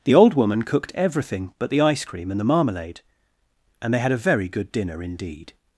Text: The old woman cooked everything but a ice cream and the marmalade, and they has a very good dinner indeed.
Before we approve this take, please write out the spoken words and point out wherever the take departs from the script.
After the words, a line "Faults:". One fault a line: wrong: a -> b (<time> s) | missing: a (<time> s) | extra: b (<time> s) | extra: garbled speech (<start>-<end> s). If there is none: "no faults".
The old woman cooked everything but the ice cream and the marmalade, and they had a very good dinner indeed.
Faults:
wrong: a -> the (1.7 s)
wrong: has -> had (4.0 s)